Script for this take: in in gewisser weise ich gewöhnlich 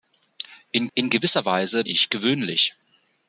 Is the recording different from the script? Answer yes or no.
no